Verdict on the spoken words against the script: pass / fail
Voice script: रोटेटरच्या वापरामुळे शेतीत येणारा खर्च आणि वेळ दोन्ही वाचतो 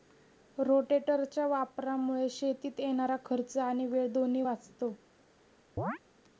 pass